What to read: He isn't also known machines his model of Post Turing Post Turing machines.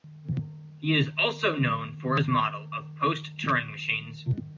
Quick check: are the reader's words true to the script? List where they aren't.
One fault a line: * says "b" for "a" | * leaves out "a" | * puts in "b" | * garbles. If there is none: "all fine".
* says "is" for "isn't"
* says "for" for "machines"
* leaves out "Post Turing"